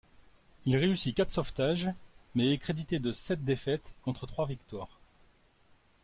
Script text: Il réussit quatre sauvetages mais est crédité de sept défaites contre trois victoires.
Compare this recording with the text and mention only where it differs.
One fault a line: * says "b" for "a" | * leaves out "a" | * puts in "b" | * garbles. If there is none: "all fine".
all fine